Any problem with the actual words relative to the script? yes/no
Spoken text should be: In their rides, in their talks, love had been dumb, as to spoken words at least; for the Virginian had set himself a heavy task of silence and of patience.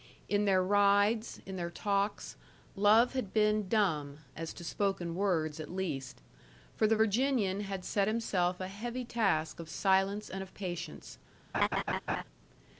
no